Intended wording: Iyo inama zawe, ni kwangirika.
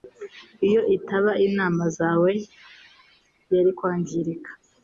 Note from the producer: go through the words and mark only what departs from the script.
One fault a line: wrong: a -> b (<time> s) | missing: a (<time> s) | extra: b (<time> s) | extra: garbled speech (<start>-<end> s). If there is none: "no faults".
extra: itaba (1.0 s)
wrong: ni -> yari (3.5 s)